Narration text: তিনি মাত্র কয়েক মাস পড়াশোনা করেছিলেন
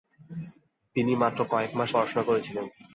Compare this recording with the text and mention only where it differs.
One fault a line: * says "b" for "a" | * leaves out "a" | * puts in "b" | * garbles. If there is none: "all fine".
all fine